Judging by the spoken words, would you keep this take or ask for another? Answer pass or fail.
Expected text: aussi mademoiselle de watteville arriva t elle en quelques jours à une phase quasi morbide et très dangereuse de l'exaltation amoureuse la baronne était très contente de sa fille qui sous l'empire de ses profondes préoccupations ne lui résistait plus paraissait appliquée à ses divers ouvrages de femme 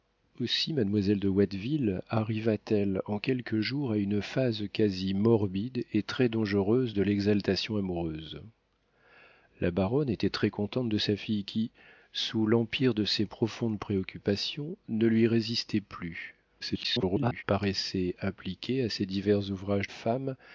fail